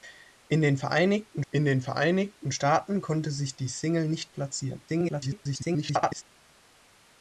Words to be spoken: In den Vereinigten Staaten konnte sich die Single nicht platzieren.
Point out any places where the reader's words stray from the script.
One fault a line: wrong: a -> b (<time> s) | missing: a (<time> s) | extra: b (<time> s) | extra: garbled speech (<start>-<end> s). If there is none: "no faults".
extra: in den Vereinigten (1.5 s)
extra: garbled speech (4.9-6.2 s)